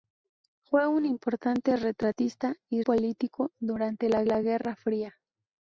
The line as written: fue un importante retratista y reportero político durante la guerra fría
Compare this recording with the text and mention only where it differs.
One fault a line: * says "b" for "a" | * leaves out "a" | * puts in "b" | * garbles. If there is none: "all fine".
* leaves out "reportero"
* puts in "la"